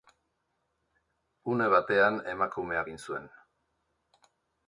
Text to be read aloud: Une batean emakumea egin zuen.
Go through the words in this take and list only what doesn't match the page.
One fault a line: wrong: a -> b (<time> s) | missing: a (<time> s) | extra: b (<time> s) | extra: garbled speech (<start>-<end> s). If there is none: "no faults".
no faults